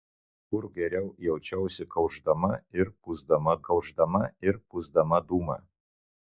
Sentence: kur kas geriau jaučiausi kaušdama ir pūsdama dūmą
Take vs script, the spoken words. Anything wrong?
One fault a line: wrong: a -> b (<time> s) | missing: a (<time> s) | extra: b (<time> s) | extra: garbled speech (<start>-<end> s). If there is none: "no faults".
missing: kas (0.6 s)
extra: kaušdama ir pūsdama (3.7 s)